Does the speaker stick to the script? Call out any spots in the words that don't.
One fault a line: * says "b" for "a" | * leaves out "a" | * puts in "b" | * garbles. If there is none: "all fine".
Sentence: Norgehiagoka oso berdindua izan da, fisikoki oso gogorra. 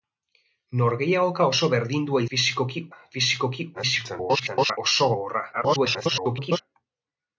* says "fisikoki" for "izan"
* garbles
* garbles